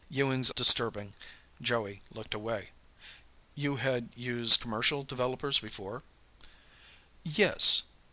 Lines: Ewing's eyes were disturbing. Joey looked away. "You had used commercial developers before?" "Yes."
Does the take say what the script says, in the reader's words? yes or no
no